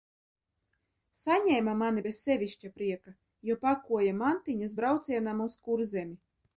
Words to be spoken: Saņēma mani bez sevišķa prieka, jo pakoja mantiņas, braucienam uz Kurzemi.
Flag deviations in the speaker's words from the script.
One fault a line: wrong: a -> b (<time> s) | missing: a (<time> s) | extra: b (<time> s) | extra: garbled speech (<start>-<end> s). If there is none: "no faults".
no faults